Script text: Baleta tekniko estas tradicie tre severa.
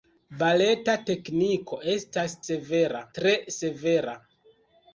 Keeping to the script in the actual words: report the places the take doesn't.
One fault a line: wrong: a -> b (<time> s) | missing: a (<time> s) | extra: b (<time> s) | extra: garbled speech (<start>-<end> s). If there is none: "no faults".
wrong: tradicie -> severa (2.5 s)